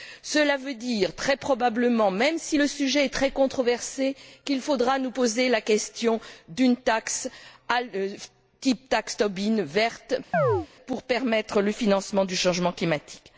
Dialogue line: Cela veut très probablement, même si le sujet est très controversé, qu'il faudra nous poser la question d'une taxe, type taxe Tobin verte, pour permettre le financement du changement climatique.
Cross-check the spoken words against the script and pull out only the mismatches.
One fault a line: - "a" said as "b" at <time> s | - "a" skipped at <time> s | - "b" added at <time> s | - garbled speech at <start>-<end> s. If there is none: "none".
- "dire" added at 0.8 s